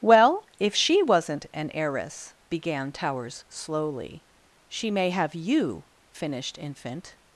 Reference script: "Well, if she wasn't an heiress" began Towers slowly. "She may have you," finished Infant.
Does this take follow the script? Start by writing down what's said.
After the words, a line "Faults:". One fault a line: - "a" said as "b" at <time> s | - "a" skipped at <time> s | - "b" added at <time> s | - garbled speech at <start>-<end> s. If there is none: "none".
"Well, if she wasn't an heiress" began Towers slowly. "She may have you," finished Infant.
Faults:
none